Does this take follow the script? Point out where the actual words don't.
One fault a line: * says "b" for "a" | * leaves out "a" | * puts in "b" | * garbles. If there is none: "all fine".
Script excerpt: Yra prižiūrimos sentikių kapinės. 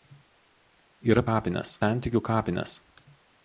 * says "kapinės" for "prižiūrimos"